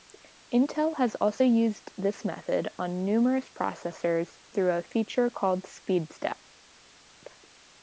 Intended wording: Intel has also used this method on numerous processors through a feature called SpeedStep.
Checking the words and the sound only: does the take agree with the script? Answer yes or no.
yes